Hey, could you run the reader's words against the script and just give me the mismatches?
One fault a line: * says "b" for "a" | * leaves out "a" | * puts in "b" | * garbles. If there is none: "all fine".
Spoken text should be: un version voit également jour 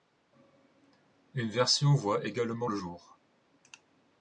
* says "une" for "un"
* puts in "le"